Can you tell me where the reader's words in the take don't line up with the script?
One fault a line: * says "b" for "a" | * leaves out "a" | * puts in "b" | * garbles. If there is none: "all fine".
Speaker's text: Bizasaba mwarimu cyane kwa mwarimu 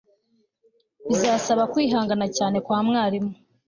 * says "kwihangana" for "mwarimu"